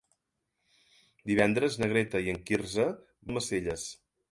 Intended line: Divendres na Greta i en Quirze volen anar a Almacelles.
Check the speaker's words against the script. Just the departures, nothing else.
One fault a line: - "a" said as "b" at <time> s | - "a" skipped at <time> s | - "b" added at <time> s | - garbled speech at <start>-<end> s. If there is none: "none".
- "volen anar a" skipped at 2.9 s